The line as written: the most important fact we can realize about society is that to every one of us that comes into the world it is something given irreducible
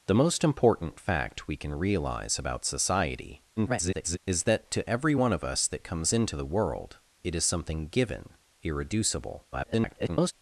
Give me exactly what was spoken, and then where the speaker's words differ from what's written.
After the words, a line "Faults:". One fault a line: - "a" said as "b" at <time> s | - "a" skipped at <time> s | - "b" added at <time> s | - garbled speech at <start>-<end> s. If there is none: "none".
the most important fact we can realize about society [garbled] is that to every one of us that comes into the world it is something given irreducible [garbled]
Faults:
- garbled speech at 3.6-4.2 s
- garbled speech at 9.5-10.3 s